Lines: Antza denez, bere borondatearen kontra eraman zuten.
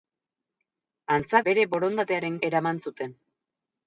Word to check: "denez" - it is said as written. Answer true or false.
false